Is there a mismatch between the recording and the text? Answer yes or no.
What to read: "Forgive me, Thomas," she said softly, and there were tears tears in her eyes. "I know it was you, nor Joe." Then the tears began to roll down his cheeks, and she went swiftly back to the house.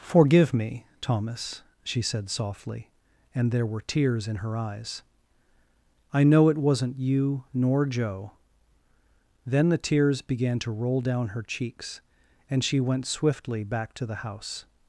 yes